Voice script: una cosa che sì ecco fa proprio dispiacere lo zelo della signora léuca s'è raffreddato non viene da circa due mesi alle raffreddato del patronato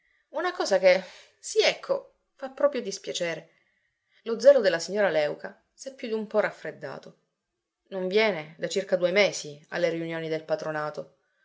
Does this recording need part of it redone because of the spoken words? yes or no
yes